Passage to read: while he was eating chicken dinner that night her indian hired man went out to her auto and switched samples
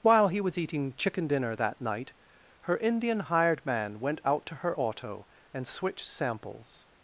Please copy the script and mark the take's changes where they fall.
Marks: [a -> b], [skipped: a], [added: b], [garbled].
while he was eating chicken dinner that night her indian hired man went out to her auto and switched samples